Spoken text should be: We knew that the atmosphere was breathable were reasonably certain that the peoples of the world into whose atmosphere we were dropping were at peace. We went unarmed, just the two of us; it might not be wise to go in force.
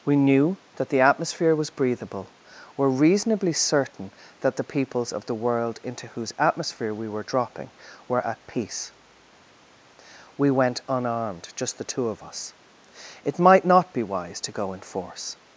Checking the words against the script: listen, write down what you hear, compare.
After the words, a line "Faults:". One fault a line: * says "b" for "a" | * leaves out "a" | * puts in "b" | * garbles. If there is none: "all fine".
We knew that the atmosphere was breathable were reasonably certain that the peoples of the world into whose atmosphere we were dropping were at peace. We went unarmed, just the two of us; it might not be wise to go in force.
Faults:
all fine